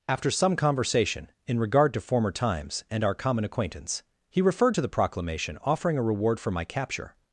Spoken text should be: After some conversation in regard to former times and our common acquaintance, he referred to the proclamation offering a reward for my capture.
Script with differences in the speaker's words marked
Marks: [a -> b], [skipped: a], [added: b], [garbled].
After some conversation in regard to former times and our common acquaintance, he referred to the proclamation offering a reward for my capture.